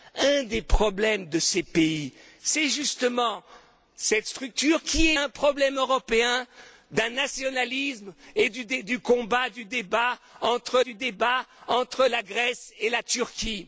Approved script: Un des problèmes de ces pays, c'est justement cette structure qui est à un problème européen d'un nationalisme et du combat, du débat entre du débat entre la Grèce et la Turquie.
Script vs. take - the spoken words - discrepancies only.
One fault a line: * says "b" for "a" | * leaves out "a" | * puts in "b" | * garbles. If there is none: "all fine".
all fine